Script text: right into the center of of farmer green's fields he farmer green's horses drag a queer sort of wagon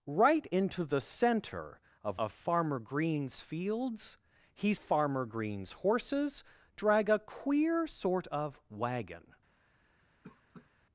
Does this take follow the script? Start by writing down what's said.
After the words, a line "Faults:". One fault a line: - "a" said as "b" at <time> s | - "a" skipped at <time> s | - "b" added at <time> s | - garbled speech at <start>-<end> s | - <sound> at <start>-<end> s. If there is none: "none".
right into the center of of farmer green's fields he farmer green's horses drag a queer sort of wagon
Faults:
- cough at 10.2-10.7 s